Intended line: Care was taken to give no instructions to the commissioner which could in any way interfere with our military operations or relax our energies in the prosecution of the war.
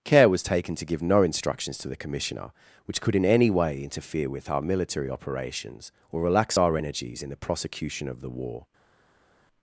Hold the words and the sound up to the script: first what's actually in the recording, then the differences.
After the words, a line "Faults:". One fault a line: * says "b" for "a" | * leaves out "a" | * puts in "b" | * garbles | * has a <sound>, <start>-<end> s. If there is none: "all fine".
Care was taken to give no instructions to the commissioner which could in any way interfere with our military operations or relax our energies in the prosecution of the war.
Faults:
all fine